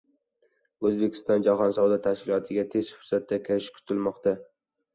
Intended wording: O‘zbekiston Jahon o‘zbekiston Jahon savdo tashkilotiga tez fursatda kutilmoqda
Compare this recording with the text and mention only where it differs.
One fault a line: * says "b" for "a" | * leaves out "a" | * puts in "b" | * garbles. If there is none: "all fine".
* leaves out "o‘zbekiston Jahon"
* puts in "kirishi"